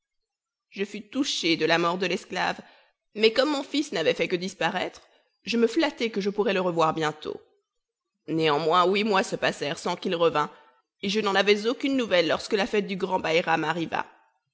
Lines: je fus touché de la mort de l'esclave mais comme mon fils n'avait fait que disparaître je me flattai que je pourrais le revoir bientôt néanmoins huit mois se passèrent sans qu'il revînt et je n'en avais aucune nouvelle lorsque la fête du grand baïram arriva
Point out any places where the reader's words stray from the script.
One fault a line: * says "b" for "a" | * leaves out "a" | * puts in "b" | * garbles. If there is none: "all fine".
all fine